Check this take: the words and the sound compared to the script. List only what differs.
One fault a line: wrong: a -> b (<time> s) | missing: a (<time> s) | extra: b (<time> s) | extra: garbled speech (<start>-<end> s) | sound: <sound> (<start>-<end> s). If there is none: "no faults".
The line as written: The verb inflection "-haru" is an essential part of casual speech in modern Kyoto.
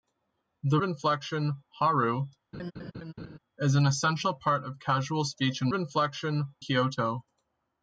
missing: verb (0.8 s)
sound: laugh (2.5-3.4 s)
wrong: modern -> inflection (5.7 s)